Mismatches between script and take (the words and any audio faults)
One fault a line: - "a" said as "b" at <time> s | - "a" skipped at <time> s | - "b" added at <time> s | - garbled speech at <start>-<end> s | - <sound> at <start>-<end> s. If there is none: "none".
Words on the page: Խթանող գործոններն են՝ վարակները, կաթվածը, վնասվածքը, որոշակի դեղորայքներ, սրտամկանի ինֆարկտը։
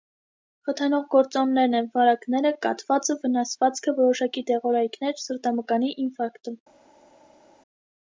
none